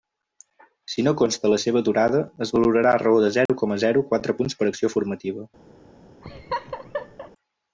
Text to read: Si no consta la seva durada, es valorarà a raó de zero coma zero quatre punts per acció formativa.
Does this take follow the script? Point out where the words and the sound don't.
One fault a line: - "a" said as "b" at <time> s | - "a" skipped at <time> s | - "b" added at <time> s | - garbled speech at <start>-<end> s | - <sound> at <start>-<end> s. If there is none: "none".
- dropout at 3.5-3.5 s
- laugh at 6.2-7.3 s